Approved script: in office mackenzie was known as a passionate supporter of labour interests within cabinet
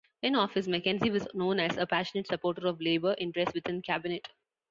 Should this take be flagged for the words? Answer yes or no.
no